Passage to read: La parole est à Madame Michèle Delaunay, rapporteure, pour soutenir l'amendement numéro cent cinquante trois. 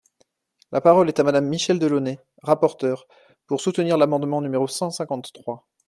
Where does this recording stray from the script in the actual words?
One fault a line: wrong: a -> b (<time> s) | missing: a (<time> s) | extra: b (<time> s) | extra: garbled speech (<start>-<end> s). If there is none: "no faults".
no faults